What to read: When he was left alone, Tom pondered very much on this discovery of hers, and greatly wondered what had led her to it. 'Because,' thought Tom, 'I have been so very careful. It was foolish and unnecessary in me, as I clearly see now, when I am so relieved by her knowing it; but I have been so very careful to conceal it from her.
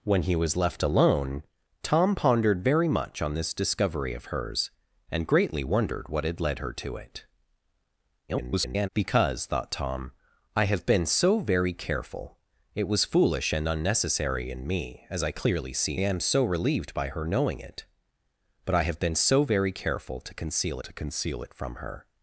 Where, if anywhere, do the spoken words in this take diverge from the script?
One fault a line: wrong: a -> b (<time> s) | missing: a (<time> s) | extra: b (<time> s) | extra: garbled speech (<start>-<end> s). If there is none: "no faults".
extra: garbled speech (8.3-8.9 s)
missing: now when I (16.0 s)
extra: to conceal (20.8 s)